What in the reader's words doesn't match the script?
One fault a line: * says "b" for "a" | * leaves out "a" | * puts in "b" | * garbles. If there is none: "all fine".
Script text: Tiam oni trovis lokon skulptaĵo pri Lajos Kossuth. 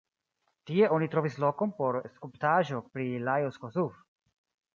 * says "Tie" for "Tiam"
* puts in "por"